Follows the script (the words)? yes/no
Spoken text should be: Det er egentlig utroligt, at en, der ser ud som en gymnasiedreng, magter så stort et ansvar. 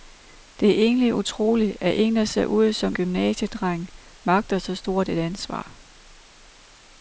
no